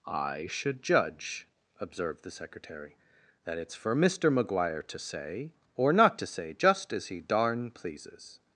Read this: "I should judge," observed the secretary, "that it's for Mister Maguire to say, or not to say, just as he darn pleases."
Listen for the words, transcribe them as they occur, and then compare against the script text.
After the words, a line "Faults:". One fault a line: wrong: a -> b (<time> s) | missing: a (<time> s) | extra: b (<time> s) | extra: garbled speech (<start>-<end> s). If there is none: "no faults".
"I should judge," observed the secretary, "that it's for Mister Maguire to say, or not to say, just as he darn pleases."
Faults:
no faults